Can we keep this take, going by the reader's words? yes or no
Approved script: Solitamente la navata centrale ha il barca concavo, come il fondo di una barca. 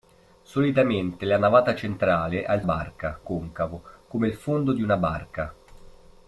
yes